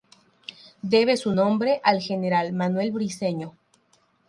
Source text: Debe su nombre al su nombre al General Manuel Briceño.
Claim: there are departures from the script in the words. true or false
true